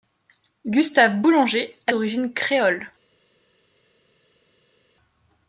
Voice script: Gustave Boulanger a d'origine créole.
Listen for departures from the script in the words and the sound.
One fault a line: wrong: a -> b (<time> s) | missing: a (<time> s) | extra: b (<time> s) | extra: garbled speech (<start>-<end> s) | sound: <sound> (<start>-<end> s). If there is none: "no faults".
no faults